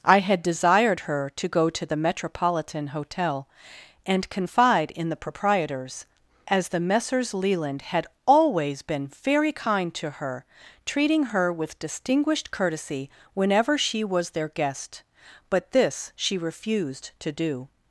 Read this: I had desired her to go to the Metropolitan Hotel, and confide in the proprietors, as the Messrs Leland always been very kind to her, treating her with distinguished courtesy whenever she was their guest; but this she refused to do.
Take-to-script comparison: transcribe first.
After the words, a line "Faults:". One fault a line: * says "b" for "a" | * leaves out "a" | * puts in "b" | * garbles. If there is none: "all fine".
I had desired her to go to the Metropolitan Hotel, and confide in the proprietors, as the Messrs Leland had always been very kind to her, treating her with distinguished courtesy whenever she was their guest; but this she refused to do.
Faults:
* puts in "had"